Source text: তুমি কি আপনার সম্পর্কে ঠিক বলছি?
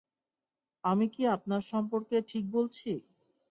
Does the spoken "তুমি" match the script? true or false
false